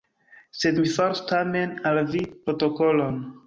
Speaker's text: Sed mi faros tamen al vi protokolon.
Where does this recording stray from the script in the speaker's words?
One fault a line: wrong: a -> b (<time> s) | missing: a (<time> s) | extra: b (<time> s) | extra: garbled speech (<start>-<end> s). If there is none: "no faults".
no faults